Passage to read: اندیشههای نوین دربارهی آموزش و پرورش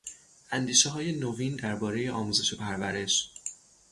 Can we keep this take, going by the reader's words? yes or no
yes